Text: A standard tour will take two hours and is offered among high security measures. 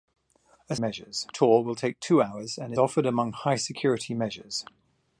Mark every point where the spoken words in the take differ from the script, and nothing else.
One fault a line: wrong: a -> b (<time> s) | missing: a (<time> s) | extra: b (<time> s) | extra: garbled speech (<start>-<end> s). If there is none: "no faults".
wrong: standard -> measures (0.8 s)
missing: is (2.7 s)